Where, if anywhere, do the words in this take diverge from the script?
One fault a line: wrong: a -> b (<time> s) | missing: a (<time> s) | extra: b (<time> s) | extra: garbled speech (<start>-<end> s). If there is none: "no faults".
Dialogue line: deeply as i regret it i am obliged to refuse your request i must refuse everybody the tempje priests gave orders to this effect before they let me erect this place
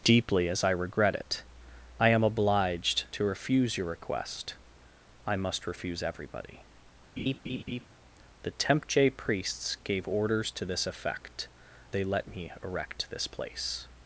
missing: before (11.5 s)